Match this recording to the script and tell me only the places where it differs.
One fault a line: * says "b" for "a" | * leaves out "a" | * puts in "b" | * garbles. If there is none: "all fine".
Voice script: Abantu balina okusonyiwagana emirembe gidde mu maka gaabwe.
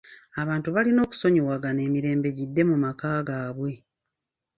all fine